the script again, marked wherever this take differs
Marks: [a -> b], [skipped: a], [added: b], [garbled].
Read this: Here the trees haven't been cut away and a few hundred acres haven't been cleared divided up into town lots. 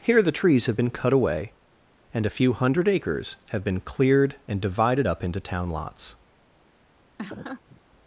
Here the trees [haven't -> have] been cut away and a few hundred acres [haven't -> have] been cleared [added: and] divided up into town lots.